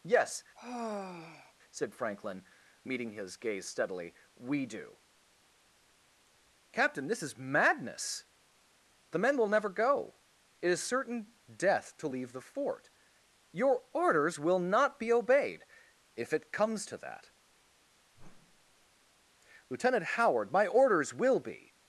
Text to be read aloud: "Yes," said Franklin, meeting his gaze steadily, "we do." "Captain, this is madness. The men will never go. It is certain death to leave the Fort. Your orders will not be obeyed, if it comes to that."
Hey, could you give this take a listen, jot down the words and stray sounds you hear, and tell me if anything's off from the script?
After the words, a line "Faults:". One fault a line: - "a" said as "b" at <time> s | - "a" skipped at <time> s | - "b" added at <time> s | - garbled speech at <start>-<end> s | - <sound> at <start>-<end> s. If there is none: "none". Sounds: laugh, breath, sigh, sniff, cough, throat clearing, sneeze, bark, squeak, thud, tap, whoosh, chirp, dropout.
"Yes," said Franklin, meeting his gaze steadily, "we do." "Captain, this is madness. The men will never go. It is certain death to leave the Fort. Your orders will not be obeyed, if it comes to that." "Lieutenant Howard, my orders will be
Faults:
- sigh at 0.6-1.5 s
- whoosh at 18.1-18.9 s
- "Lieutenant Howard my orders will be" added at 19.7 s